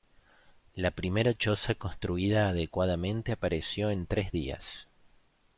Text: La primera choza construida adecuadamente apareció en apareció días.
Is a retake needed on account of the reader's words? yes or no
yes